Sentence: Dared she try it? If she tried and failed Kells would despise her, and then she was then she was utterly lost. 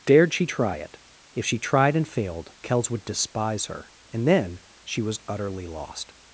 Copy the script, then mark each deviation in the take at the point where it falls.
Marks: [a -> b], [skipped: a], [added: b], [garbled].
Dared she try it? If she tried and failed Kells would despise her, and then she was [skipped: then she was] utterly lost.